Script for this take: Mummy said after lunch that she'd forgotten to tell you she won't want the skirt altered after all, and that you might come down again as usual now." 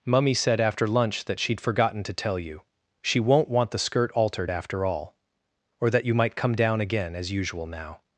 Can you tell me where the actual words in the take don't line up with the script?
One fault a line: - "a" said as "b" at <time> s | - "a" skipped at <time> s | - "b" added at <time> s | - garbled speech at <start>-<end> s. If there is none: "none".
- "and" said as "or" at 5.8 s